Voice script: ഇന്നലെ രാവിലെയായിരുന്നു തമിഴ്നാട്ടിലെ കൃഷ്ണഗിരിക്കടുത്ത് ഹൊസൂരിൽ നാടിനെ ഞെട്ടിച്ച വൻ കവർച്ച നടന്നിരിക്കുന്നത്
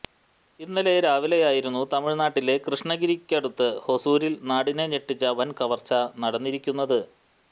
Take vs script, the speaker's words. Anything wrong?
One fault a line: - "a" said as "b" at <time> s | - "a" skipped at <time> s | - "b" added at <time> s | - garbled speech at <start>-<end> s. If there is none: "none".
none